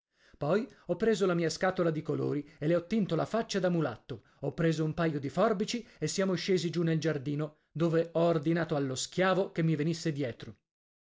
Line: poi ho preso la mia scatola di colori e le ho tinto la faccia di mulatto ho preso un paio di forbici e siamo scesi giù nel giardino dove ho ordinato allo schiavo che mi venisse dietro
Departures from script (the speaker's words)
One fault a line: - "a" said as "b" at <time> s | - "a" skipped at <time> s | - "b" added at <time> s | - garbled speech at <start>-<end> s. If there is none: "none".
- "di" said as "da" at 3.6 s